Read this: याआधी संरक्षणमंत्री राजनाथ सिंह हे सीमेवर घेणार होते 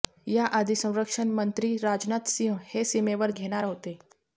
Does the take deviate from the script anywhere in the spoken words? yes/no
no